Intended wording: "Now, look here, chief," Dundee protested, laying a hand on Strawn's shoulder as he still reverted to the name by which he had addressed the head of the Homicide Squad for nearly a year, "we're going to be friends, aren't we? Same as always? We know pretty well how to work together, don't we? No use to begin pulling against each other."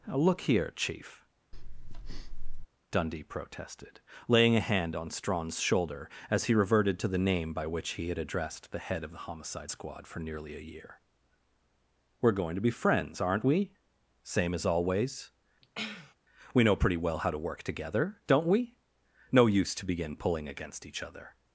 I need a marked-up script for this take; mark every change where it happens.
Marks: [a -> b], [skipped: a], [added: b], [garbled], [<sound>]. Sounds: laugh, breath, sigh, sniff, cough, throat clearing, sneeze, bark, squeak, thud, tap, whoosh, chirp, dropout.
"Now, look here, chief," [breath] Dundee protested, laying a hand on Strawn's shoulder as he [skipped: still] reverted to the name by which he had addressed the head of the Homicide Squad for nearly a year, "we're going to be friends, aren't we? Same as always? [sniff] We know pretty well how to work together, don't we? No use to begin pulling against each other."